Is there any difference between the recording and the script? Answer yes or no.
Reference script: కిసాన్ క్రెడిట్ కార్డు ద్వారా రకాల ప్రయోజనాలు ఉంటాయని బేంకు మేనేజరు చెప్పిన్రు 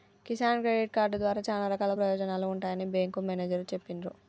yes